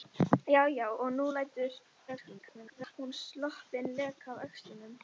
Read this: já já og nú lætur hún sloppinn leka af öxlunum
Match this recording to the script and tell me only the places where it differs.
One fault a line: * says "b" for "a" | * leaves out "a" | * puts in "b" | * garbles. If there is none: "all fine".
* garbles